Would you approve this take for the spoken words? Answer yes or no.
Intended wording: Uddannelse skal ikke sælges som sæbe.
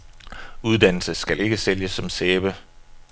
yes